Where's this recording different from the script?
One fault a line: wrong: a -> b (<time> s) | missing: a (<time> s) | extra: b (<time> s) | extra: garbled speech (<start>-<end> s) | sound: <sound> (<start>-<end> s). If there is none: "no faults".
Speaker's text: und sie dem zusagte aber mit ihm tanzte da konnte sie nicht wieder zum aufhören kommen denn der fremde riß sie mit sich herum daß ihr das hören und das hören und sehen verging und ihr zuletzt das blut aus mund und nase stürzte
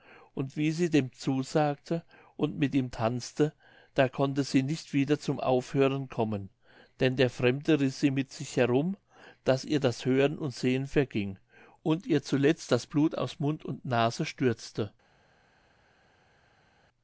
extra: wie (0.6 s)
wrong: aber -> und (2.4 s)
missing: das hören und (10.5 s)